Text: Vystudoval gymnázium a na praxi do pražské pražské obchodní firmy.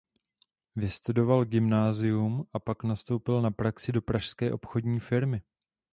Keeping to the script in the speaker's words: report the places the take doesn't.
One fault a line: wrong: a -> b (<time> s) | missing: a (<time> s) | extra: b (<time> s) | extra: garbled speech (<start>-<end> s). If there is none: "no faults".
extra: pak nastoupil (2.6 s)
missing: pražské (4.5 s)